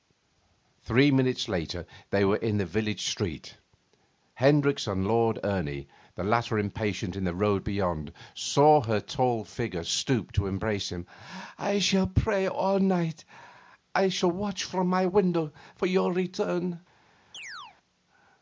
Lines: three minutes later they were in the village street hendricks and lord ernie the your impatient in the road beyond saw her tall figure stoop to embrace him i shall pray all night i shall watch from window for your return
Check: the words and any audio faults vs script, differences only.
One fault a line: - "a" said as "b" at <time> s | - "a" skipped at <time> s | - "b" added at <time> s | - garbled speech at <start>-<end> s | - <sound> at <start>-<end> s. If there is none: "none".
- "your" said as "latter" at 6.2 s
- "my" added at 14.9 s
- chirp at 17.3-17.8 s